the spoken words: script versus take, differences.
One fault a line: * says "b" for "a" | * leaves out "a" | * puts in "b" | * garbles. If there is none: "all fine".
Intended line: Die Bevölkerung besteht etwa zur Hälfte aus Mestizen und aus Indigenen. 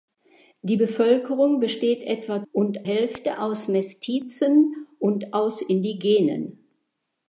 * says "und" for "zur"